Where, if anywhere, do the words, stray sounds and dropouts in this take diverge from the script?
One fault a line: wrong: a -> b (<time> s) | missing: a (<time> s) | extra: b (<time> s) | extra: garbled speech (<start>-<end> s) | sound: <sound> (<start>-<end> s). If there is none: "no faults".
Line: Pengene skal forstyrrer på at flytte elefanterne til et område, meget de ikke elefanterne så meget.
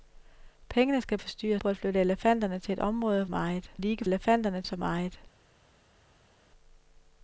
no faults